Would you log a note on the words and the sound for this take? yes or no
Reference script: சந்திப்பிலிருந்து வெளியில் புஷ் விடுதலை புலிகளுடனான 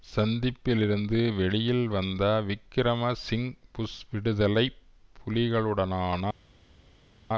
yes